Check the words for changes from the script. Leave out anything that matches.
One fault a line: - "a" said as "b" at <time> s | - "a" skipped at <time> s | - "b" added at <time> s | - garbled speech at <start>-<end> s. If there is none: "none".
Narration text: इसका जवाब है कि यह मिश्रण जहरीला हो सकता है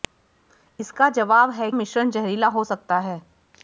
- "कि यह" skipped at 1.7 s